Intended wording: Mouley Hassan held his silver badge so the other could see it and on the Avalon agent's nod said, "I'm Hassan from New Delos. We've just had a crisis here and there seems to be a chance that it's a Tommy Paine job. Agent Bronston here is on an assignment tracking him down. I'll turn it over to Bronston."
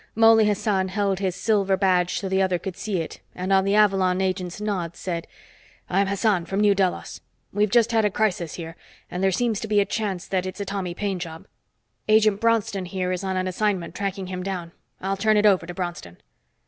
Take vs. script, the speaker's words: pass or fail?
pass